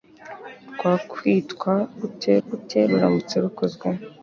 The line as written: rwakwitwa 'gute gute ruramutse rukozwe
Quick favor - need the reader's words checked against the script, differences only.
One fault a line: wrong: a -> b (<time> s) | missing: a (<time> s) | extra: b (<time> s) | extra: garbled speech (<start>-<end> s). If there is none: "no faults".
no faults